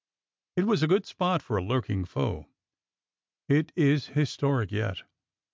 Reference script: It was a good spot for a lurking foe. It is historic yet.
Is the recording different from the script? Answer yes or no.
no